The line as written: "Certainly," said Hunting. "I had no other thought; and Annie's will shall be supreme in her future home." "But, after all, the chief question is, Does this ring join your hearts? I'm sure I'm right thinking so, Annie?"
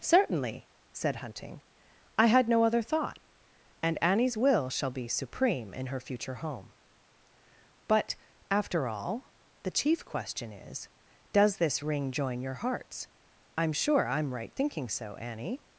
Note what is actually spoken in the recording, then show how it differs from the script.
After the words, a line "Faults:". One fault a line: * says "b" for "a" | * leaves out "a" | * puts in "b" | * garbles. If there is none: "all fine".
"Certainly," said Hunting. "I had no other thought; and Annie's will shall be supreme in her future home." "But, after all, the chief question is, Does this ring join your hearts? I'm sure I'm right thinking so, Annie?"
Faults:
all fine